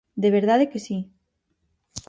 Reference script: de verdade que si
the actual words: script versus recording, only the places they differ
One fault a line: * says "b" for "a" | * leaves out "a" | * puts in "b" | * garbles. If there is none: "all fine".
all fine